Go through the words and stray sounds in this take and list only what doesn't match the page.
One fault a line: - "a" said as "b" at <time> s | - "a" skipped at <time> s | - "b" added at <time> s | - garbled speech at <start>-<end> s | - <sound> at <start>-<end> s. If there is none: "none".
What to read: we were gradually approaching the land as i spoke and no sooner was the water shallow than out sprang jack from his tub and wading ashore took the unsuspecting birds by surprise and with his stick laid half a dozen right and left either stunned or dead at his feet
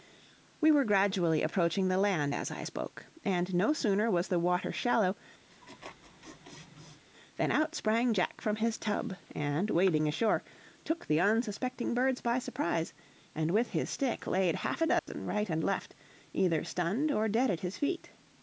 - laugh at 5.5-7.0 s
- dropout at 15.0-15.1 s